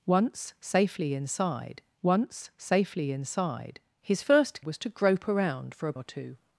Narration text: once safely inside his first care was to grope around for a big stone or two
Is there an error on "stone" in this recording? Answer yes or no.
yes